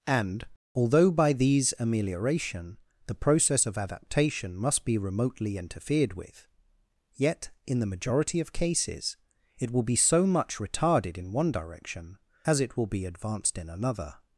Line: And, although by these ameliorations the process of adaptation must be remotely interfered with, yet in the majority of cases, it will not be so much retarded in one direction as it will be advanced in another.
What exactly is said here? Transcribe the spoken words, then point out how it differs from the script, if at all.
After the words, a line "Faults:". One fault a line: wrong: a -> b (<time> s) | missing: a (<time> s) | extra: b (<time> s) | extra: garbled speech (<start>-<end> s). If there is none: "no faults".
And, although by these amelioration the process of adaptation must be remotely interfered with, yet in the majority of cases, it will be so much retarded in one direction as it will be advanced in another.
Faults:
wrong: ameliorations -> amelioration (1.8 s)
missing: not (9.8 s)